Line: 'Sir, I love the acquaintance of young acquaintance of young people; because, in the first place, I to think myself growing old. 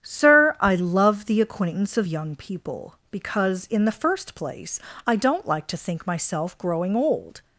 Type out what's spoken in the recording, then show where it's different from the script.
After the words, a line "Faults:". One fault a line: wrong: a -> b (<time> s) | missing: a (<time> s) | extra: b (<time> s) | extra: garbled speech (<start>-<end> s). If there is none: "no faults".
'Sir, I love the acquaintance of young people; because, in the first place, I don't like to think myself growing old.
Faults:
missing: acquaintance of young (2.4 s)
extra: don't like (5.2 s)